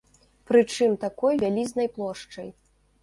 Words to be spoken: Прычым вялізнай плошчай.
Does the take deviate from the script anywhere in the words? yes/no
yes